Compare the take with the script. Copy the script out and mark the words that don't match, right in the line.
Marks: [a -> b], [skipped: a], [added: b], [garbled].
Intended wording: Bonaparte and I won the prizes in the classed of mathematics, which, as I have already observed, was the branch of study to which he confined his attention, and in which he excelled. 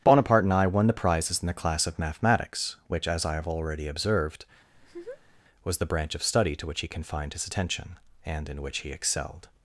Bonaparte and I won the prizes in the [classed -> class] of mathematics, which, as I have already observed, was the branch of study to which he confined his attention, and in which he excelled.